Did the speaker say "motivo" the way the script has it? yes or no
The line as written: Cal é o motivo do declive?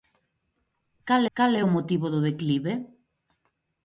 yes